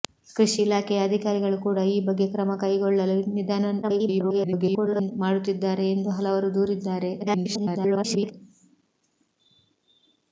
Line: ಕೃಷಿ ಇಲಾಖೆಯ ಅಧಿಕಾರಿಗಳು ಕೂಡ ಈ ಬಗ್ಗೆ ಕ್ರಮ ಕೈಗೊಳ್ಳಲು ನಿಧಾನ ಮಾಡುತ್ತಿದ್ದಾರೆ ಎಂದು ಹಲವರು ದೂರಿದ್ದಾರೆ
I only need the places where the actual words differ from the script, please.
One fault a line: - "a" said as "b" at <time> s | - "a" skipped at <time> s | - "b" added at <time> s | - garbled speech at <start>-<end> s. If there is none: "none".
- garbled speech at 3.8-5.1 s
- garbled speech at 7.2-8.3 s